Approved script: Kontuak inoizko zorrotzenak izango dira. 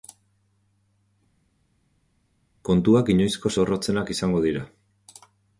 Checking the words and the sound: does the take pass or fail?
pass